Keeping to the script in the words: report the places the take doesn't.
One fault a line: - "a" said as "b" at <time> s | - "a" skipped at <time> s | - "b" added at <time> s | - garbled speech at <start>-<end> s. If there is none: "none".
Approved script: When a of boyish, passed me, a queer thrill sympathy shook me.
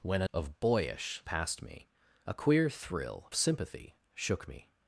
none